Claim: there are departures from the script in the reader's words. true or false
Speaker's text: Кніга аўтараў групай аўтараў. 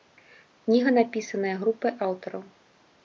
true